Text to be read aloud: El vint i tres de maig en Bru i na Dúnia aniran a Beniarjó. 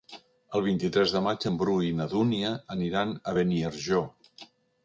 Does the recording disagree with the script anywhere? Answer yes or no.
no